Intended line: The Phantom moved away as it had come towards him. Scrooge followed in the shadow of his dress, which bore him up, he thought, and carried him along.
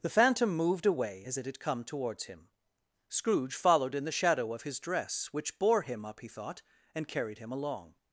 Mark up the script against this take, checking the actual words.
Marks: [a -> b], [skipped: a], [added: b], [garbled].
The Phantom moved away as it had come towards him. Scrooge followed in the shadow of his dress, which bore him up, he thought, and carried him along.